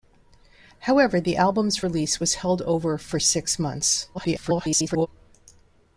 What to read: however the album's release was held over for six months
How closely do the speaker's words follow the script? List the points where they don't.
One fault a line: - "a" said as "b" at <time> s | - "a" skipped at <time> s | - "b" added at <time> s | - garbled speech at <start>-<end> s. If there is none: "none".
- garbled speech at 4.1-5.1 s